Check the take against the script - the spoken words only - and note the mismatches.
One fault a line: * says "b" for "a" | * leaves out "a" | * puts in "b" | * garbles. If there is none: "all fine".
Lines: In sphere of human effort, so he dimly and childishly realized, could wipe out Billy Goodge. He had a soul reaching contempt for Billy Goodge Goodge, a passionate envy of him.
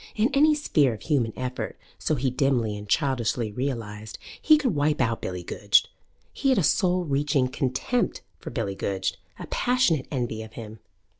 * puts in "any"
* puts in "he"
* leaves out "Goodge"